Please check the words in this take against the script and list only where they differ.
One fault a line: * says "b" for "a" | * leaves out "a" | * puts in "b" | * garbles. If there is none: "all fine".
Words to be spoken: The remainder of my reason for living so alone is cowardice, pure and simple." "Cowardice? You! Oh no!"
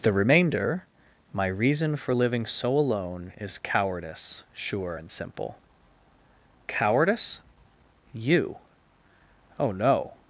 * leaves out "of"
* says "sure" for "pure"